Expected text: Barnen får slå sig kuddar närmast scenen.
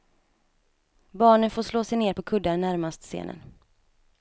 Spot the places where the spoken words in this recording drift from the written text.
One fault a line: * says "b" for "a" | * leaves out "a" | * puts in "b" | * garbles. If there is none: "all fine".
* puts in "ner på"